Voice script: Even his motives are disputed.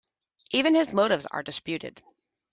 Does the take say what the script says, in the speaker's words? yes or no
yes